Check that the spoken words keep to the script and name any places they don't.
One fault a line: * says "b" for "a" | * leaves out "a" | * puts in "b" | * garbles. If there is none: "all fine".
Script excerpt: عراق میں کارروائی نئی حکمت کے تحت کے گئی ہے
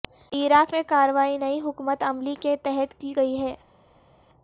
* puts in "عملی"
* says "کی" for "کے"